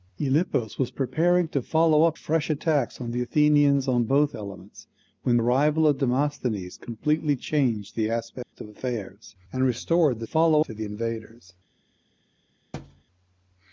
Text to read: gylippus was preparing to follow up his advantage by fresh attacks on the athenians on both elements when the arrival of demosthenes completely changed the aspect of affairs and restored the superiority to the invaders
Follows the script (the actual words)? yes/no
no